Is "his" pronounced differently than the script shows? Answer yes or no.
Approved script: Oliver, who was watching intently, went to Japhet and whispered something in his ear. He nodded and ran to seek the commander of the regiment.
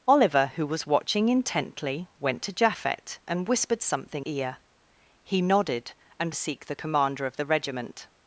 yes